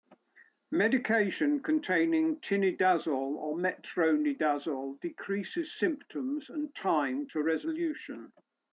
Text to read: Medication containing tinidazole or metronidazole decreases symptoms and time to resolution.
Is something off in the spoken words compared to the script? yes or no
no